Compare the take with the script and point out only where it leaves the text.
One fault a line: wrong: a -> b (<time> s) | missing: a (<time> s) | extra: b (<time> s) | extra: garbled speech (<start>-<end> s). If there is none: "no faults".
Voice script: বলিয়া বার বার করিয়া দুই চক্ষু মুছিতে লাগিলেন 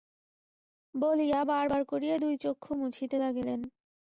no faults